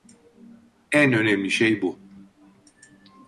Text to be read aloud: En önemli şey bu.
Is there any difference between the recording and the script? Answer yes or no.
no